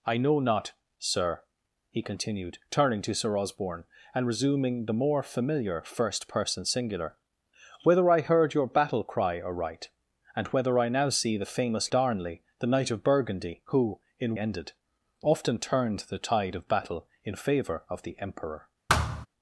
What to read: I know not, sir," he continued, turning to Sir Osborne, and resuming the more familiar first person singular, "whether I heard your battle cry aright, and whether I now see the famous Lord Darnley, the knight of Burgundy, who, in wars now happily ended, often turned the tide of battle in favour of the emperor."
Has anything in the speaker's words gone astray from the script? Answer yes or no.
yes